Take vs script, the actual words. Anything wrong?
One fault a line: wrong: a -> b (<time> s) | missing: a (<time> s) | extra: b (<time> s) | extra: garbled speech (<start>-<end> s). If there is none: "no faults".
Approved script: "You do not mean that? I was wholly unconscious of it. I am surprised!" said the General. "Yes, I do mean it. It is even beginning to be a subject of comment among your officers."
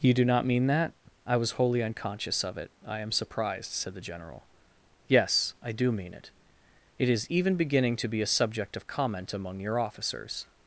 no faults